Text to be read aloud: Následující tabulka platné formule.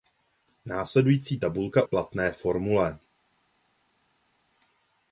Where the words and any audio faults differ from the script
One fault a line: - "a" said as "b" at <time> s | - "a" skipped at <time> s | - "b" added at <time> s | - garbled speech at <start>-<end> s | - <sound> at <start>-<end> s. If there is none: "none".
none